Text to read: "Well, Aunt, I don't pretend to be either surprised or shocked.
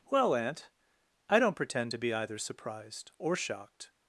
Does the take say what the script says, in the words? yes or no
yes